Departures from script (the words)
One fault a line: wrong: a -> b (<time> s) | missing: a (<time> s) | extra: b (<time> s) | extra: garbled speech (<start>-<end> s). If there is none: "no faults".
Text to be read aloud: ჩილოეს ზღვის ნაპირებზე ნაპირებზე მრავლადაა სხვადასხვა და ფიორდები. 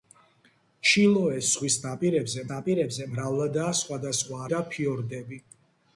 no faults